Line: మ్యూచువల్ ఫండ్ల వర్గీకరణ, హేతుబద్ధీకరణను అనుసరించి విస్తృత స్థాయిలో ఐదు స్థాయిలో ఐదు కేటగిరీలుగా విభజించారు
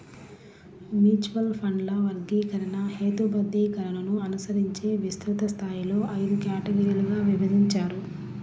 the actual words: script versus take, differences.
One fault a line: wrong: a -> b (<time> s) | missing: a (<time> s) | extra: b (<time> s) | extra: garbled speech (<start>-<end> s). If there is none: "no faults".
missing: స్థాయిలో ఐదు (6.4 s)